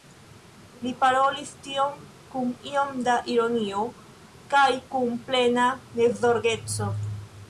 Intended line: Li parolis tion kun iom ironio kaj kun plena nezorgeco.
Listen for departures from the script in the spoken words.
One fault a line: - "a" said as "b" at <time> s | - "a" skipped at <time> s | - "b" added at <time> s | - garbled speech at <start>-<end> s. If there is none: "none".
- "da" added at 3.1 s